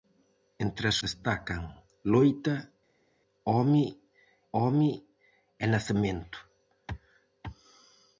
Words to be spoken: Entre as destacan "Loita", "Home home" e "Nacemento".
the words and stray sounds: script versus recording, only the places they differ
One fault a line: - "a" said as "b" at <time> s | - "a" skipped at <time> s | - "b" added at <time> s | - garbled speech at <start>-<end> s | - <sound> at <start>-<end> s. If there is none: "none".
none